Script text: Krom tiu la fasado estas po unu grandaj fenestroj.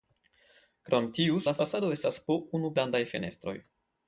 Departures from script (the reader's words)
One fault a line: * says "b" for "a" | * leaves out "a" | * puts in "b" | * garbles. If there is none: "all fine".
all fine